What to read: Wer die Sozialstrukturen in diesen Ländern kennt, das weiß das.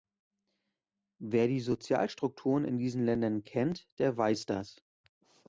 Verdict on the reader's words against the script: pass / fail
fail